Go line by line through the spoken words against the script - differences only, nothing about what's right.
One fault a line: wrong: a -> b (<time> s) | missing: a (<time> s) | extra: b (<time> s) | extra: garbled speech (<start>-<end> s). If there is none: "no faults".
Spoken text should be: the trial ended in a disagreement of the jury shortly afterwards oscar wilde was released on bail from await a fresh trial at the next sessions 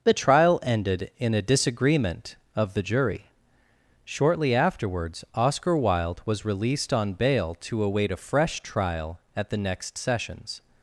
wrong: from -> to (7.6 s)